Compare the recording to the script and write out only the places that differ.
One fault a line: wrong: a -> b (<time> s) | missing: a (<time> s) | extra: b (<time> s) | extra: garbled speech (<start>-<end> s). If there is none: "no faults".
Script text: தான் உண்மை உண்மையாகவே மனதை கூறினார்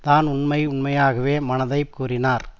no faults